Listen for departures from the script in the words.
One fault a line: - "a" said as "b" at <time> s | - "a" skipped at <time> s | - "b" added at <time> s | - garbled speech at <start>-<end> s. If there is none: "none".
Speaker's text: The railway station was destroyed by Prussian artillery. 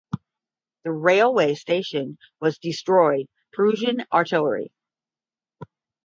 - "by" skipped at 3.3 s